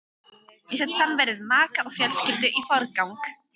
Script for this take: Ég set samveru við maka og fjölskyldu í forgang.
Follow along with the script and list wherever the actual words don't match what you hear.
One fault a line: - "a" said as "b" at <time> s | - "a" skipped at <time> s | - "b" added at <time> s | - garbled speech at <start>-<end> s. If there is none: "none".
none